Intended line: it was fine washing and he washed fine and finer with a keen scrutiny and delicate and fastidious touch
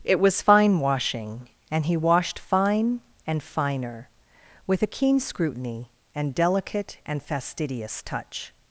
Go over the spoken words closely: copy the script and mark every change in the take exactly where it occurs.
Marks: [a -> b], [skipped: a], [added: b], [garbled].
it was fine washing and he washed fine and finer with a keen scrutiny and delicate and fastidious touch